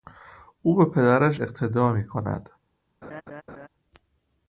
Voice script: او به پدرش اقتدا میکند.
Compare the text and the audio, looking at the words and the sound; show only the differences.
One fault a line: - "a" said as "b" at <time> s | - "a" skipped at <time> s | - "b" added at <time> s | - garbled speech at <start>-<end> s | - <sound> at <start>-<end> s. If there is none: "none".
- laugh at 3.0-3.7 s